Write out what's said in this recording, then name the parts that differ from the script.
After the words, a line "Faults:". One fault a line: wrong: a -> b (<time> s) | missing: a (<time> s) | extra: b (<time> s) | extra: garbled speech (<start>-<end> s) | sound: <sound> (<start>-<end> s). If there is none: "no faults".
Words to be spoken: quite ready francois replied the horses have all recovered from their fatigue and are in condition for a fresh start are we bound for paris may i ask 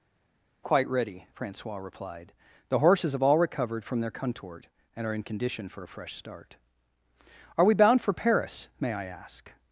quite ready francois replied the horses have all recovered from their contort and are in condition for a fresh start are we bound for paris may i ask
Faults:
wrong: fatigue -> contort (4.1 s)